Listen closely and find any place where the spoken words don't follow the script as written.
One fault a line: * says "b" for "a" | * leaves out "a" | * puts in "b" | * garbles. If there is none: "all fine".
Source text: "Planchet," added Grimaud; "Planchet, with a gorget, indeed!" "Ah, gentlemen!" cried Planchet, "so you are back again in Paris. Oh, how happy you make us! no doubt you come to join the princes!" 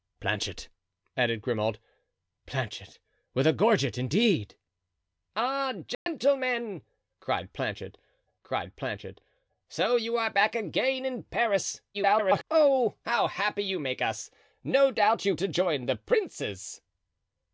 * puts in "cried Planchet"
* garbles
* leaves out "come"